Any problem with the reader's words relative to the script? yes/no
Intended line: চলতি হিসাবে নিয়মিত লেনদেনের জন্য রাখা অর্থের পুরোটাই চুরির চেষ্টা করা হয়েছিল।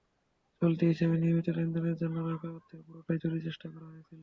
no